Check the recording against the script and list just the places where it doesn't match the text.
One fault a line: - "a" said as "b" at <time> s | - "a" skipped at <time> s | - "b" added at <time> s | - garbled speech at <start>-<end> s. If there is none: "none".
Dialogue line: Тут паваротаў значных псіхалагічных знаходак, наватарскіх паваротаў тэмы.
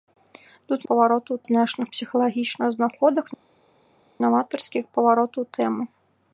none